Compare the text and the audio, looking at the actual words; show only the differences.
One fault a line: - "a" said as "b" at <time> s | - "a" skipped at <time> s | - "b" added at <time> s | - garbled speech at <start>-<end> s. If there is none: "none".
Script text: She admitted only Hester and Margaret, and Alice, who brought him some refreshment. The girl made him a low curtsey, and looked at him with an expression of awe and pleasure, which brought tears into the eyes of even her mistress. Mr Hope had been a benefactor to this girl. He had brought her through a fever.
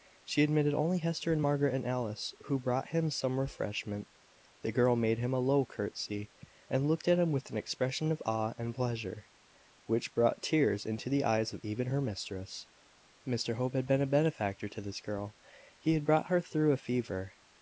none